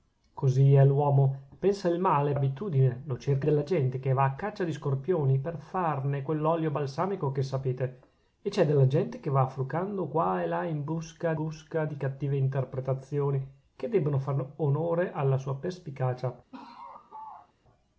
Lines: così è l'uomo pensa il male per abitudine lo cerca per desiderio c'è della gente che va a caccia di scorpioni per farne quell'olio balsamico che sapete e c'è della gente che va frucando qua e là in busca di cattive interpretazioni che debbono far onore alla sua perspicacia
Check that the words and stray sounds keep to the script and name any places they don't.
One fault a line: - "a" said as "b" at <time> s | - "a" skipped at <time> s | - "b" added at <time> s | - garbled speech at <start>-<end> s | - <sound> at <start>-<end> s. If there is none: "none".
- "per" skipped at 2.3 s
- "per desiderio c'è" skipped at 3.5 s
- "busca" added at 11.3 s
- laugh at 16.5-17.5 s